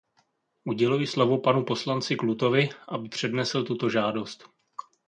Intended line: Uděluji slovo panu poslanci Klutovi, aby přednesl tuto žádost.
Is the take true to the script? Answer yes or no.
yes